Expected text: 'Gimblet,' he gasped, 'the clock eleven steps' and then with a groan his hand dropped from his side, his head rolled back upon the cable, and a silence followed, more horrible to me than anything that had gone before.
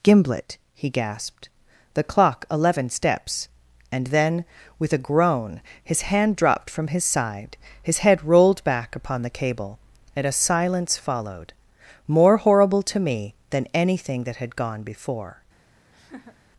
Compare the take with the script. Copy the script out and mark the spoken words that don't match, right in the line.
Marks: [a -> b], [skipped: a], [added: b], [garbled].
'Gimblet,' he gasped, 'the clock eleven steps' and then with a groan his hand dropped from his side, his head rolled back upon the cable, and a silence followed, more horrible to me than anything that had gone before.